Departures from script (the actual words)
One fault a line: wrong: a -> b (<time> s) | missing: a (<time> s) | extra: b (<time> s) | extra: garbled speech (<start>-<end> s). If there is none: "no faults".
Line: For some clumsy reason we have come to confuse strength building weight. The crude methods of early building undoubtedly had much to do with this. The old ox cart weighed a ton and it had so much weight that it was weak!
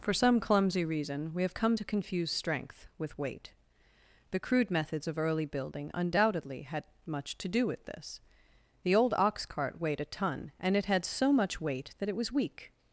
wrong: building -> with (3.0 s)